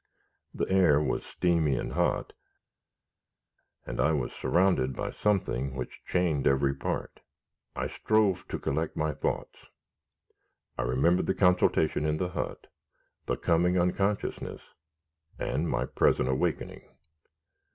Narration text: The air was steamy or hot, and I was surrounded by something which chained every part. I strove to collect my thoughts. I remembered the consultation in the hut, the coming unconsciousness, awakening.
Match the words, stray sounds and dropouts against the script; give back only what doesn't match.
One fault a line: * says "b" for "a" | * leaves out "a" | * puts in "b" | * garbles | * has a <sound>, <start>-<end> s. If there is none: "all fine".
* says "and" for "or"
* puts in "and my present"